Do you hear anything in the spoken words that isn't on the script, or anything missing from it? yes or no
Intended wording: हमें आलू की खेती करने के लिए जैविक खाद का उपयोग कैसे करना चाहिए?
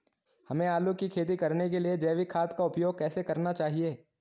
no